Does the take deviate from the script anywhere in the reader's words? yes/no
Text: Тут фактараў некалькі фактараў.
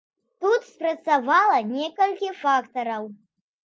yes